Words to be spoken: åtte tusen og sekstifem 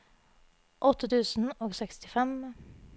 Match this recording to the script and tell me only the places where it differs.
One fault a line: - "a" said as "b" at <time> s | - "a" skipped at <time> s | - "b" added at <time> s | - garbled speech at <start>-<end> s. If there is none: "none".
none